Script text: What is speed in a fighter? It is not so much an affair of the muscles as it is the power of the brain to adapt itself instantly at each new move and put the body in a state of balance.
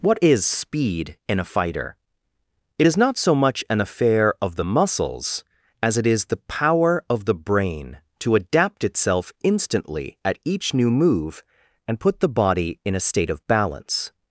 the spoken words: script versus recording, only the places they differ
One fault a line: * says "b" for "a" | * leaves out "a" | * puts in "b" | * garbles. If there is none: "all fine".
all fine